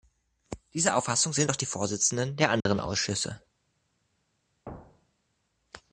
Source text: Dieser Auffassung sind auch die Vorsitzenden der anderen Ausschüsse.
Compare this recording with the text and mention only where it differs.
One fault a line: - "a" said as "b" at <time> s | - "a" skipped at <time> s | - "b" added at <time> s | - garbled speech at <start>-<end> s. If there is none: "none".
none